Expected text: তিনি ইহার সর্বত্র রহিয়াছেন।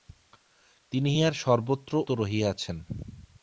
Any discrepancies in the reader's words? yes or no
no